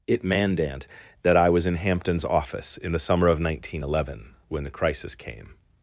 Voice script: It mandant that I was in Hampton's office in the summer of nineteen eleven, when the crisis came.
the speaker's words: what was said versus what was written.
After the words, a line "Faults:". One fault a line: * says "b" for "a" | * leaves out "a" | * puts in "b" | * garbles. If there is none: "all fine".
It mandant that I was in Hampton's office in the summer of nineteen eleven, when the crisis came.
Faults:
all fine